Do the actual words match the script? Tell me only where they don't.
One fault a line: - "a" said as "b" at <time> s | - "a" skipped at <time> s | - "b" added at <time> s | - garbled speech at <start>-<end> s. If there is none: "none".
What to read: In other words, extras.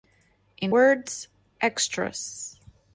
- "other" skipped at 0.7 s